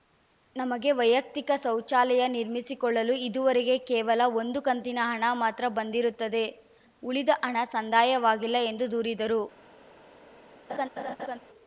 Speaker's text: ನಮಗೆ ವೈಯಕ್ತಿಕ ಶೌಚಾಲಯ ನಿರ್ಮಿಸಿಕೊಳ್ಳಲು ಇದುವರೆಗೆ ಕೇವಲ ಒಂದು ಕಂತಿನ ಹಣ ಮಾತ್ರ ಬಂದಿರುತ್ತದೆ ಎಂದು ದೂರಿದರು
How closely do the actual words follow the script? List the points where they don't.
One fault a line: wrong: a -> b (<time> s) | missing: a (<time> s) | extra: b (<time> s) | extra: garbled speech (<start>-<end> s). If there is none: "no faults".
extra: ಉಳಿದ ಹಣ ಸಂದಾಯವಾಗಿಲ್ಲ (7.0 s)